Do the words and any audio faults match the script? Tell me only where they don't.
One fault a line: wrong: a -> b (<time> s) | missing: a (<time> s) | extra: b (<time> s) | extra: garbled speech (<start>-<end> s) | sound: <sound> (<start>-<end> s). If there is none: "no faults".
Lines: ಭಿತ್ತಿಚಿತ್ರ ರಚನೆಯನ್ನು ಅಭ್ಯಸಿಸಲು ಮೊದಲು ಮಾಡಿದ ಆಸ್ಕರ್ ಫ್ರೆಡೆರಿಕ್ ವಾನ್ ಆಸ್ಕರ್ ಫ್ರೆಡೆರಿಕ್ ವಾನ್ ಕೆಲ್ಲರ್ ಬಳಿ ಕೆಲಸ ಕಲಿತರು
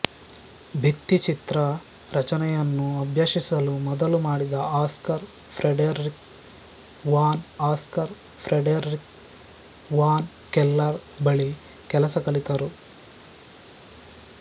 no faults